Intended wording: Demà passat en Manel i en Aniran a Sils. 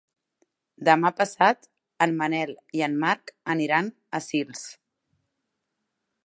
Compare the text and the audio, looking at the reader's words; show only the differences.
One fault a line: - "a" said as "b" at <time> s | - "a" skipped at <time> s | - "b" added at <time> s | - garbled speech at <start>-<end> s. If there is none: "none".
- "Marc" added at 3.0 s